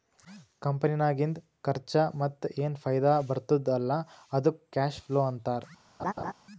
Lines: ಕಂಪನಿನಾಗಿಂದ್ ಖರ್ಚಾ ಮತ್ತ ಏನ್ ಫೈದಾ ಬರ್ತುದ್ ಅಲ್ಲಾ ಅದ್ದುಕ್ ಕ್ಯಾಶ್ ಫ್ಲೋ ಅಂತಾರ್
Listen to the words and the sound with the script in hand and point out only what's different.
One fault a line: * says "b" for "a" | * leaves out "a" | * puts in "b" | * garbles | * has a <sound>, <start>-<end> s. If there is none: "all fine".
* has a laugh, 6.0-6.3 s